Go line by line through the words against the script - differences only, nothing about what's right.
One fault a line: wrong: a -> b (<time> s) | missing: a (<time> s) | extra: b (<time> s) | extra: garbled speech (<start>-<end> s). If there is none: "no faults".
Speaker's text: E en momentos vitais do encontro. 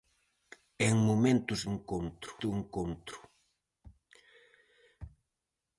wrong: vitais -> encontro (1.7 s)